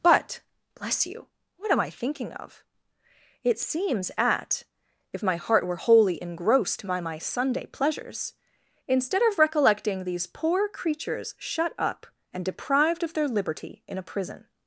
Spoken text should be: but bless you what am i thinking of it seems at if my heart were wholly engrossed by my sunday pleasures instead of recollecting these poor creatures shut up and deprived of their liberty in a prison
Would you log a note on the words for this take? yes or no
no